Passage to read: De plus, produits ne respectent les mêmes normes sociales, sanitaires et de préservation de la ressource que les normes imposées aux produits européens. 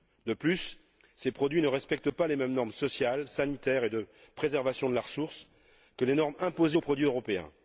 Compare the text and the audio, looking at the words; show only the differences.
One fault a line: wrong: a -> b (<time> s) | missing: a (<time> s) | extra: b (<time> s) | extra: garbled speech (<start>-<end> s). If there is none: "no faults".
extra: ces (1.1 s)
extra: pas (2.1 s)